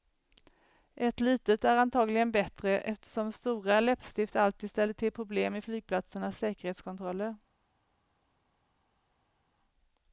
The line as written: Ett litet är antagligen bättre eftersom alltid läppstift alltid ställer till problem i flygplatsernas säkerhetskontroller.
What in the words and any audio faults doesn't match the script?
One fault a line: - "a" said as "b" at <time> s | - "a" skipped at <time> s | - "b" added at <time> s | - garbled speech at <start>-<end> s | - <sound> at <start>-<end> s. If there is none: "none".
- "alltid" said as "stora" at 3.3 s